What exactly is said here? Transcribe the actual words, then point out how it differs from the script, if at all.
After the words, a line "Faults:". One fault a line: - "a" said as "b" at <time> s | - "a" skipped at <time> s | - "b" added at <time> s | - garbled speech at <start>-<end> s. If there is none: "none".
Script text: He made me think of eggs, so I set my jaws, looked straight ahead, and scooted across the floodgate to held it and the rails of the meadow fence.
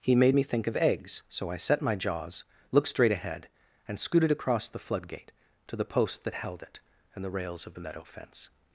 He made me think of eggs, so I set my jaws, looked straight ahead, and scooted across the floodgate to the post that held it and the rails of the meadow fence.
Faults:
- "the post that" added at 5.7 s